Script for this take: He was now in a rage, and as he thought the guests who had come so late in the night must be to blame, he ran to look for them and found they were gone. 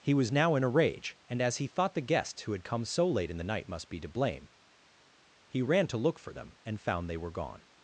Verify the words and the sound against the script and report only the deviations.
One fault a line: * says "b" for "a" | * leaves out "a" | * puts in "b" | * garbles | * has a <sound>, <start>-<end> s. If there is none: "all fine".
all fine